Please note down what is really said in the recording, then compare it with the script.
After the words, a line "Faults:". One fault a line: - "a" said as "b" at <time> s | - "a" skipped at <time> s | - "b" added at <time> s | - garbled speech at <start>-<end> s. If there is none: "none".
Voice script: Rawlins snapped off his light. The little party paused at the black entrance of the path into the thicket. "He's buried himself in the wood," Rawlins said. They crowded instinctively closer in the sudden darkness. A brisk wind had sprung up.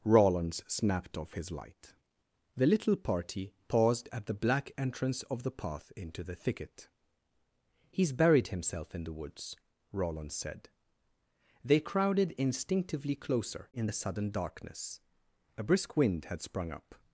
Rawlins snapped off his light. The little party paused at the black entrance of the path into the thicket. "He's buried himself in the woods," Rawlins said. They crowded instinctively closer in the sudden darkness. A brisk wind had sprung up.
Faults:
- "wood" said as "woods" at 9.1 s